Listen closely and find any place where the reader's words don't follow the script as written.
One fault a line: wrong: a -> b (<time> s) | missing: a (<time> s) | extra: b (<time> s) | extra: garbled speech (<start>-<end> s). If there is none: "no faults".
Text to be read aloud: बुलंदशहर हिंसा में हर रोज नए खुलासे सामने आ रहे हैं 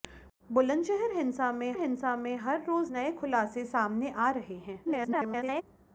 extra: हिंसा में (1.8 s)
extra: garbled speech (4.8-5.6 s)